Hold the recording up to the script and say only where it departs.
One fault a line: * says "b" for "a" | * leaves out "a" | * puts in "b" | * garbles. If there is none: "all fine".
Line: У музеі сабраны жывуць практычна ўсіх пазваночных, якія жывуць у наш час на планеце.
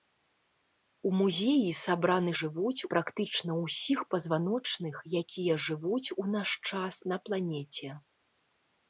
all fine